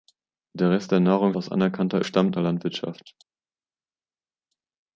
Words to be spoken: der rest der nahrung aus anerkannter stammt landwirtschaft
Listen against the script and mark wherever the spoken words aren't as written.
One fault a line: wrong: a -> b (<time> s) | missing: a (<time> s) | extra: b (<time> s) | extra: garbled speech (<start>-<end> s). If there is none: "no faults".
no faults